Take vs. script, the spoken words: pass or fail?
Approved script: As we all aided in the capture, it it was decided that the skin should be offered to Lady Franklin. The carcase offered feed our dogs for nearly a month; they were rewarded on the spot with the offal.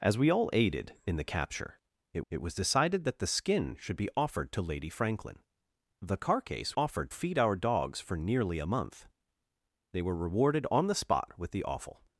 pass